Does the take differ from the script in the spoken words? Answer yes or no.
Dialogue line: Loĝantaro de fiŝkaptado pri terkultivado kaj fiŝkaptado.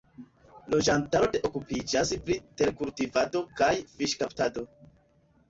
yes